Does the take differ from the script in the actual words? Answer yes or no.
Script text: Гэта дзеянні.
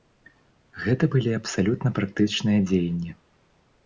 yes